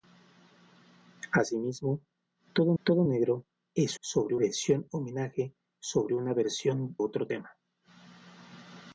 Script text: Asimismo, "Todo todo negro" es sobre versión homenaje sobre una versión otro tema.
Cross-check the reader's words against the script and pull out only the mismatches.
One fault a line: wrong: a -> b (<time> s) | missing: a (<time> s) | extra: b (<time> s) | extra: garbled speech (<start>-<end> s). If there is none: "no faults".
no faults